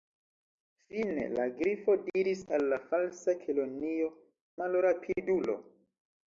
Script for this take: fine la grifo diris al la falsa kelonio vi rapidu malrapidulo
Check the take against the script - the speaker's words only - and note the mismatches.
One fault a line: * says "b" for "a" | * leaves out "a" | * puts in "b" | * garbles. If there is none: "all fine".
* leaves out "vi rapidu"